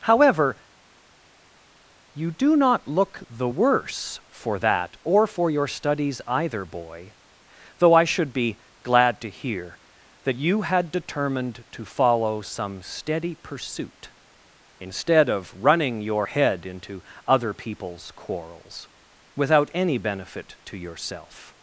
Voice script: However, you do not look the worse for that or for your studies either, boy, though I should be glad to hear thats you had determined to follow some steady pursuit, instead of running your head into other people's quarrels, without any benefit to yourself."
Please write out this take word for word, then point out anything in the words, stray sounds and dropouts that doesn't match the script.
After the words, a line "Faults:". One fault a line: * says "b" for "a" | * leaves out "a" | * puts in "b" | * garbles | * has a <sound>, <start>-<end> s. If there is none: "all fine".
However, you do not look the worse for that or for your studies either, boy, though I should be glad to hear that you had determined to follow some steady pursuit, instead of running your head into other people's quarrels, without any benefit to yourself."
Faults:
* says "that" for "thats"